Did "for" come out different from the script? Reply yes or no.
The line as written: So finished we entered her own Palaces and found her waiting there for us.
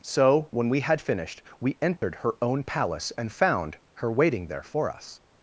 no